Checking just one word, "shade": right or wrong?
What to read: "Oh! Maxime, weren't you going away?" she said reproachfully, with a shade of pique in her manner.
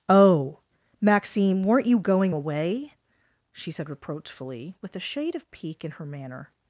right